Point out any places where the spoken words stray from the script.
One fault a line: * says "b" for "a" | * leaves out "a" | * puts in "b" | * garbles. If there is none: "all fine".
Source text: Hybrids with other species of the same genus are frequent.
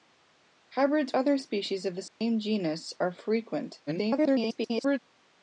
* leaves out "with"
* garbles